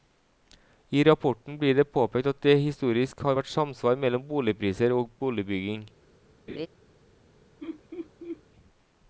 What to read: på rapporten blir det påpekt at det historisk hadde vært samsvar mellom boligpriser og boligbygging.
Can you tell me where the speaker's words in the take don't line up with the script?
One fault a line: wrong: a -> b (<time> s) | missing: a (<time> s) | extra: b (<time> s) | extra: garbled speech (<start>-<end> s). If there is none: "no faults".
wrong: på -> I (0.9 s)
wrong: hadde -> har (3.3 s)